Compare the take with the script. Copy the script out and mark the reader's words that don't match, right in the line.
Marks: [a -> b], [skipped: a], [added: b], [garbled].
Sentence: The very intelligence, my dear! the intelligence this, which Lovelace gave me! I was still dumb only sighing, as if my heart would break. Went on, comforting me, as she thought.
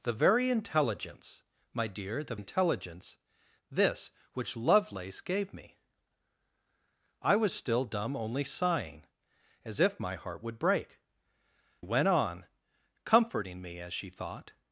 The very intelligence, my dear! the intelligence this, which Lovelace gave me! I was still dumb only sighing, as if my heart would break. Went on, comforting me, as she thought.